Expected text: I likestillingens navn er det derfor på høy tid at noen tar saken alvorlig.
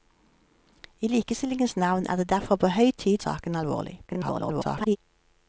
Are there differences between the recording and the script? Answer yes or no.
yes